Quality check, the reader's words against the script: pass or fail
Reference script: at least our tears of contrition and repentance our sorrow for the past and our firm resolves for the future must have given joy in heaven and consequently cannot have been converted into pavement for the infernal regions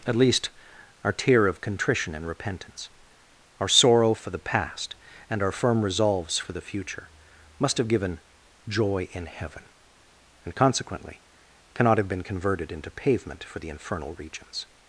fail